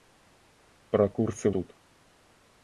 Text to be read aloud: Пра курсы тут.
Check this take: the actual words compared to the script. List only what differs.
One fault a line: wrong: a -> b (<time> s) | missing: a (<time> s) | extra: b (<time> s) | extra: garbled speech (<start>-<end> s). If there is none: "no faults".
no faults